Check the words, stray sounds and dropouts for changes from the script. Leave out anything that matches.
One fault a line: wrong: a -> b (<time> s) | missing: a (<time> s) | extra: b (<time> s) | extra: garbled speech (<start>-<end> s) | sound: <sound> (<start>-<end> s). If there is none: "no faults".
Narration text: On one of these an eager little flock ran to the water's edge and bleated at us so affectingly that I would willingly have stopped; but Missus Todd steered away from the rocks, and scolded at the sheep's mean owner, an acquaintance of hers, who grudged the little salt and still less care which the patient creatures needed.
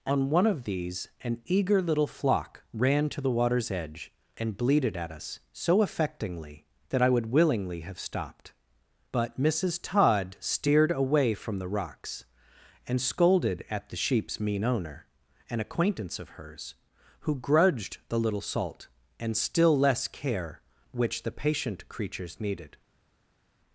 no faults